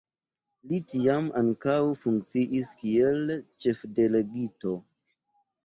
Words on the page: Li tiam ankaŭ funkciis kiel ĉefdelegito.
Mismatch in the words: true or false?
false